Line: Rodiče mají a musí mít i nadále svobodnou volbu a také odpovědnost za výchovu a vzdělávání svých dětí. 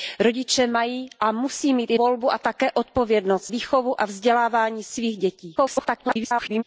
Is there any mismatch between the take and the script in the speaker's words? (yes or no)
yes